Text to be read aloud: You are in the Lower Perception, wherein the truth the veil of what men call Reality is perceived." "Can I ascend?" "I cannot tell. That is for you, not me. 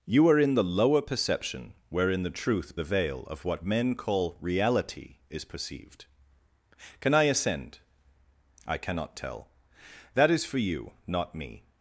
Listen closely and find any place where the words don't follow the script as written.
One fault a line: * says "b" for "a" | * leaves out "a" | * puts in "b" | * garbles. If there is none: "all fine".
all fine